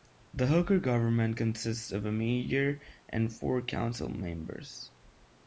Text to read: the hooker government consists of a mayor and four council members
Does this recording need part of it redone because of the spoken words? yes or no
no